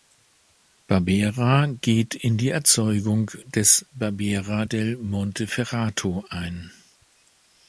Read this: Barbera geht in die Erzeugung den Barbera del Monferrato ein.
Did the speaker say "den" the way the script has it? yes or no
no